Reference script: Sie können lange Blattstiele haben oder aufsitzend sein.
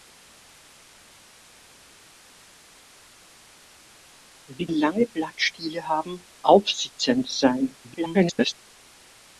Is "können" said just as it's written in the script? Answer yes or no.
no